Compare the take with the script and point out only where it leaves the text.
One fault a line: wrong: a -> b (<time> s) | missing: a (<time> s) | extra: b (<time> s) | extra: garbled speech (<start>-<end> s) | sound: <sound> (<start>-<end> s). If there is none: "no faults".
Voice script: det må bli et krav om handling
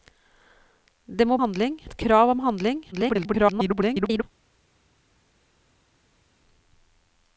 wrong: bli -> handling (1.4 s)
extra: garbled speech (2.9-4.2 s)